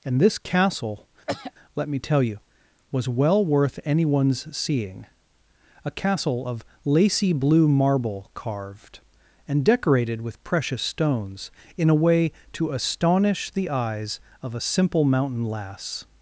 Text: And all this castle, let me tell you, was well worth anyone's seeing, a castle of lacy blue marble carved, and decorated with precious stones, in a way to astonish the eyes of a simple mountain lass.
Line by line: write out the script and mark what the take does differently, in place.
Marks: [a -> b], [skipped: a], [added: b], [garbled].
And [skipped: all] this castle, let me tell you, was well worth anyone's seeing, a castle of lacy blue marble carved, and decorated with precious stones, in a way to astonish the eyes of a simple mountain lass.